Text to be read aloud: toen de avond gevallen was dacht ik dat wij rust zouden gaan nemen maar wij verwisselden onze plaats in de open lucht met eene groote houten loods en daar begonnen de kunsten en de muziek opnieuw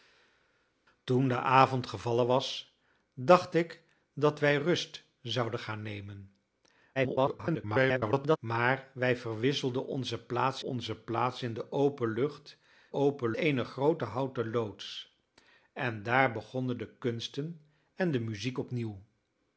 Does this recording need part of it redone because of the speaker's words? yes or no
yes